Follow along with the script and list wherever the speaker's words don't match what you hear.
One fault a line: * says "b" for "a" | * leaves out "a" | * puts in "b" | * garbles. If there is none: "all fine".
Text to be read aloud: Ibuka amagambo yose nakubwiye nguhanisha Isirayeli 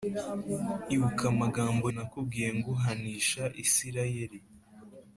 * leaves out "yose"